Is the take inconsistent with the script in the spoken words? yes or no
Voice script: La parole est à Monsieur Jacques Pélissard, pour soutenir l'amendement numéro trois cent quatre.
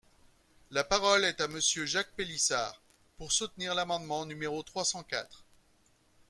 no